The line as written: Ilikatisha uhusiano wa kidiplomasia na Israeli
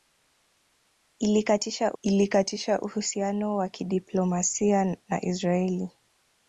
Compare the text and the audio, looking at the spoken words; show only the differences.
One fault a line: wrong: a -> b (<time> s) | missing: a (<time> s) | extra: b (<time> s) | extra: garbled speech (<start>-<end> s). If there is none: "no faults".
extra: ilikatisha (2.0 s)